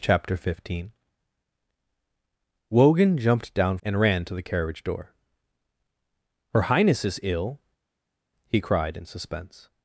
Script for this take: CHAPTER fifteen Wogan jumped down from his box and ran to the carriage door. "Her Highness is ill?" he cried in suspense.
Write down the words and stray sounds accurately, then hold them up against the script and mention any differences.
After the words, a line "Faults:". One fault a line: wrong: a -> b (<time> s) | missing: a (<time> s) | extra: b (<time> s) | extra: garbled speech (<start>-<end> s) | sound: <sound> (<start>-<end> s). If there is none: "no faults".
CHAPTER fifteen Wogan jumped down and ran to the carriage door. "Her Highness is ill?" he cried in suspense.
Faults:
missing: from his box (3.8 s)